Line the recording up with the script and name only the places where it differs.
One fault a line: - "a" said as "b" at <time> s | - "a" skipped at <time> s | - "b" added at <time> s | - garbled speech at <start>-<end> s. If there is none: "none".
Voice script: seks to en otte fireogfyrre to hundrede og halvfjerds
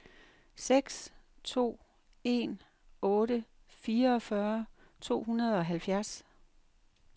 none